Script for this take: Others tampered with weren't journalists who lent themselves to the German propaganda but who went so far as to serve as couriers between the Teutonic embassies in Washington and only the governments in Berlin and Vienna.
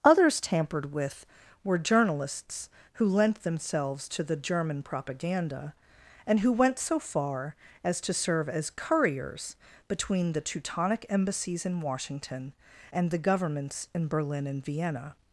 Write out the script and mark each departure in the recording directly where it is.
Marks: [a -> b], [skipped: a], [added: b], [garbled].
Others tampered with [weren't -> were] journalists who lent themselves to the German propaganda [but -> and] who went so far as to serve as couriers between the Teutonic embassies in Washington and [skipped: only] the governments in Berlin and Vienna.